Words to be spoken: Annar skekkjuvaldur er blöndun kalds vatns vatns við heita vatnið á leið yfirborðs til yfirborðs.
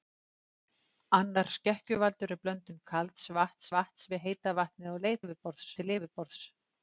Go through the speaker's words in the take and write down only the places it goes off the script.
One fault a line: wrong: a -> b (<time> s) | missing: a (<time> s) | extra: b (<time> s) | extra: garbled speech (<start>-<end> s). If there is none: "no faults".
no faults